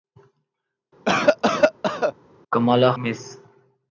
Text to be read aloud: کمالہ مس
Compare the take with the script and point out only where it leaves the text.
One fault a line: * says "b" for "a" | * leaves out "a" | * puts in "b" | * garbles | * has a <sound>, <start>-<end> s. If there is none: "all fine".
* has a cough, 1.0-2.1 s